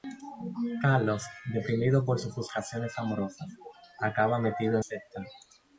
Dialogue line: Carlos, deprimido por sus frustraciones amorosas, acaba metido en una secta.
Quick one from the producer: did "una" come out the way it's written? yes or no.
no